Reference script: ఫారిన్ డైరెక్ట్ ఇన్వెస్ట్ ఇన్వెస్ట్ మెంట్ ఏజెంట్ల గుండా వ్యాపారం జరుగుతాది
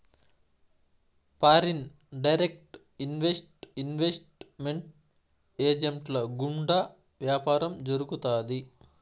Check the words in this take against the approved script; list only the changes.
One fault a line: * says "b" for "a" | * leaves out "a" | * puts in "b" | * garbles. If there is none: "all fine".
all fine